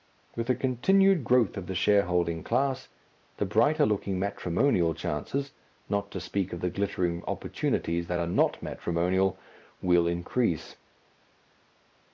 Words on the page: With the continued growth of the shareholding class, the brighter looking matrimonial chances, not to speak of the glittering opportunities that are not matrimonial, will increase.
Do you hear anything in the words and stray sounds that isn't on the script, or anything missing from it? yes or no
no